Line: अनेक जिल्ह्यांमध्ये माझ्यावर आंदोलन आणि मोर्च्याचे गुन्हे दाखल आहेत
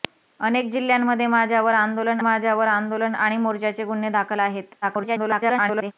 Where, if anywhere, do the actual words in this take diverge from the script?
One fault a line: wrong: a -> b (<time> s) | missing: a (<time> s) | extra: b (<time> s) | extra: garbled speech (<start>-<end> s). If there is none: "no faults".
extra: माझ्यावर आंदोलन (2.2 s)
extra: garbled speech (4.8-5.9 s)